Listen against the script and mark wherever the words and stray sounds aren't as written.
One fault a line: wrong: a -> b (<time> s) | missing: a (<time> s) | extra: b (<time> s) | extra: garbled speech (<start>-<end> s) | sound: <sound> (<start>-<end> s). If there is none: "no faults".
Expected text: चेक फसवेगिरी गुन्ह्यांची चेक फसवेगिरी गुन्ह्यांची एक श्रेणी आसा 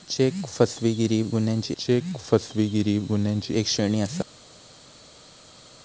no faults